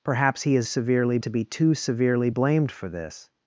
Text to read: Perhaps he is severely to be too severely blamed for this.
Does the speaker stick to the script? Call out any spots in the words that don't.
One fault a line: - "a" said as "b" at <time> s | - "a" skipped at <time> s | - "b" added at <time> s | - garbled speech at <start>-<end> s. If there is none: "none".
none